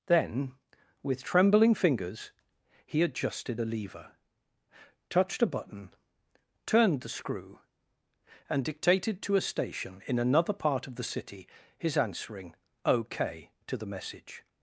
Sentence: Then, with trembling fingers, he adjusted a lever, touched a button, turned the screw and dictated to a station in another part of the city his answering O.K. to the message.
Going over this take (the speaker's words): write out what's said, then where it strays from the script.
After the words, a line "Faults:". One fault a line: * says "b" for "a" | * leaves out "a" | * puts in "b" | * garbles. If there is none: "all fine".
Then, with trembling fingers, he adjusted a lever, touched a button, turned the screw and dictated to a station in another part of the city his answering O.K. to the message.
Faults:
all fine